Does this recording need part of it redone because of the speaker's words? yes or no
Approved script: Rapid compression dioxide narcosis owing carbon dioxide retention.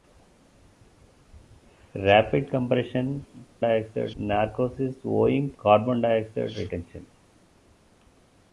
no